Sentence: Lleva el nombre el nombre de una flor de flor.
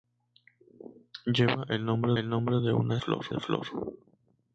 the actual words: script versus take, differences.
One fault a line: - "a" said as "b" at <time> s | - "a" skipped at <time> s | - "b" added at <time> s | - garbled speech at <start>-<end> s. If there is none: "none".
none